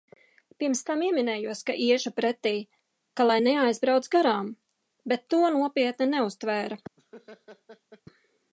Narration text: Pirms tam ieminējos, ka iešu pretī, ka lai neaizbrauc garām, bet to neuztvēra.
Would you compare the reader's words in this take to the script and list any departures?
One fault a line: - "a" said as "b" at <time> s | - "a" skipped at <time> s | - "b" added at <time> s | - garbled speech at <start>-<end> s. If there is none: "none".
- "nopietni" added at 5.6 s